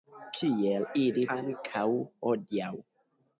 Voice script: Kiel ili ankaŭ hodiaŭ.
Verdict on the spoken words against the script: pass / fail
pass